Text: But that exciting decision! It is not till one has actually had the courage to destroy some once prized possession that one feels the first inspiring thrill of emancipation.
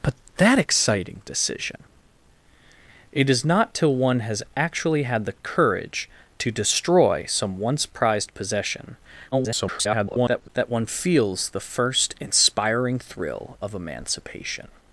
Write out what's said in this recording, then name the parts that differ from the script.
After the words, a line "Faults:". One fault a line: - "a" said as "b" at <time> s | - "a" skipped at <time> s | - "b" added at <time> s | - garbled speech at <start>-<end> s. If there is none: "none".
But that exciting decision! It is not till one has actually had the courage to destroy some once prized possession [garbled] that one feels the first inspiring thrill of emancipation.
Faults:
- garbled speech at 9.3-10.5 s